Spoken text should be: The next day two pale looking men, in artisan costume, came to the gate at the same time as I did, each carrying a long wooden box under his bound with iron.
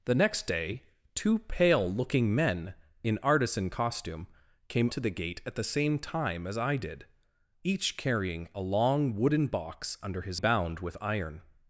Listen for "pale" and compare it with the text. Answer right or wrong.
right